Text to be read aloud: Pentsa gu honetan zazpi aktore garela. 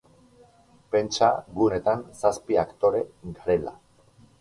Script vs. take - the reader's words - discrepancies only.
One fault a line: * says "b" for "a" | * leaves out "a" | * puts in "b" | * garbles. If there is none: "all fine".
all fine